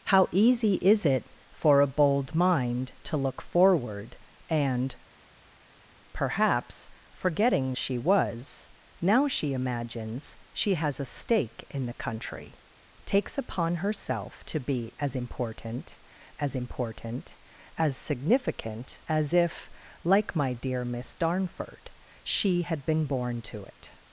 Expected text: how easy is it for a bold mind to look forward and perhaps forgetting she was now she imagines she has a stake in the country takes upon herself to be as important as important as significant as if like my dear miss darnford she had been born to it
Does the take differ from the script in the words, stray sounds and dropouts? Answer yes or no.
no